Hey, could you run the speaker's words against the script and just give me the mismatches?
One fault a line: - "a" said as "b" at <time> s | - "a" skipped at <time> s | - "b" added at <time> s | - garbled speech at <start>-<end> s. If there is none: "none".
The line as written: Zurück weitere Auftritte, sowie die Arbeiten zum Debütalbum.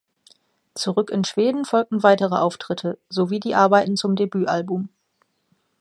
- "in Schweden folgten" added at 1.1 s